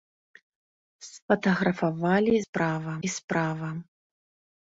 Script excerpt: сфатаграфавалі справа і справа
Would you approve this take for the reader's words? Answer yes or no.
yes